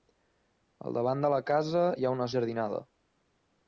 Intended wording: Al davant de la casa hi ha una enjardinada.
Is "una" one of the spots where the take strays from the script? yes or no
no